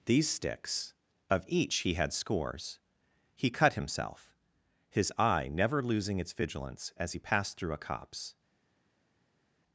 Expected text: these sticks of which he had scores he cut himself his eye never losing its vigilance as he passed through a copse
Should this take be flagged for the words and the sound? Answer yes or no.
yes